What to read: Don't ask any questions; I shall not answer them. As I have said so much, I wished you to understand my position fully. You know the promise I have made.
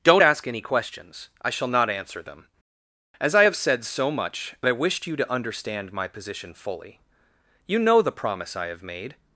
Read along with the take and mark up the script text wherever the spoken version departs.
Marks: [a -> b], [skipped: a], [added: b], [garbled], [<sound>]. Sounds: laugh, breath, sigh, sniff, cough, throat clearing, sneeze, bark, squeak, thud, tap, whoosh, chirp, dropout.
Don't ask any questions; I shall not answer them. As I have said so much, I wished you to understand my position fully. You know the promise I have made.